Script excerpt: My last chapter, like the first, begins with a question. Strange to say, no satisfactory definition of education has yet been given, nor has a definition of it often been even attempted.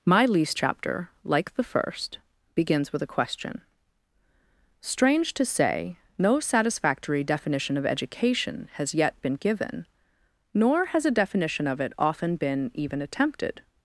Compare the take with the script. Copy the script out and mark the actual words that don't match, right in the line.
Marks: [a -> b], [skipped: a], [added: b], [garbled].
My [last -> least] chapter, like the first, begins with a question. Strange to say, no satisfactory definition of education has yet been given, nor has a definition of it often been even attempted.